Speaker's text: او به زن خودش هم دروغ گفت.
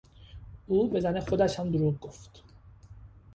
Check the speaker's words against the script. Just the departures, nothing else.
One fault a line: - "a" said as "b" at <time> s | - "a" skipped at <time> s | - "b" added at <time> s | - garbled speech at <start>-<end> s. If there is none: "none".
none